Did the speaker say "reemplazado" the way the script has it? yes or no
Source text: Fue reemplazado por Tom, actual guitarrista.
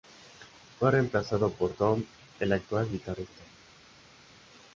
yes